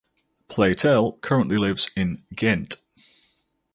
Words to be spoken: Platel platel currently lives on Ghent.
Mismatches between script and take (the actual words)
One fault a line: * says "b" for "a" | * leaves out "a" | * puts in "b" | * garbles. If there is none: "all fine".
* leaves out "platel"
* says "in" for "on"